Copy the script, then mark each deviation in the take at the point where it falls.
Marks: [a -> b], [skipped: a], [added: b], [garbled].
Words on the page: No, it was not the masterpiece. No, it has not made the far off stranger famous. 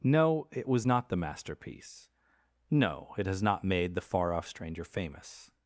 No, it was not the masterpiece. No, it has not made the far off stranger famous.